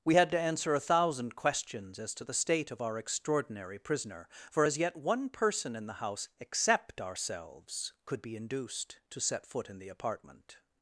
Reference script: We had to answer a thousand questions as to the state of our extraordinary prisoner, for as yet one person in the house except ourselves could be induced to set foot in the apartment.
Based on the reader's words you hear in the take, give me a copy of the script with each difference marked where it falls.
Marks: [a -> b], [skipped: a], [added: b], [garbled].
We had to answer a thousand questions as to the state of our extraordinary prisoner, for as yet one person in the house except ourselves could be induced to set foot in the apartment.